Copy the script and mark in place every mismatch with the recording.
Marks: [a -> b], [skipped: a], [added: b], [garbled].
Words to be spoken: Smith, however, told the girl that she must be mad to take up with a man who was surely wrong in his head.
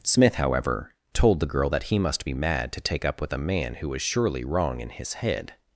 Smith, however, told the girl that [she -> he] must be mad to take up with a man who was surely wrong in his head.